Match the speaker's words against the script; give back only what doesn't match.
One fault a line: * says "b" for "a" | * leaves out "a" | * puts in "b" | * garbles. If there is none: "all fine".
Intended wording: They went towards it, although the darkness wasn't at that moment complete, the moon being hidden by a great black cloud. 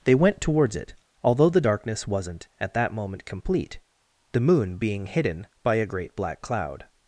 all fine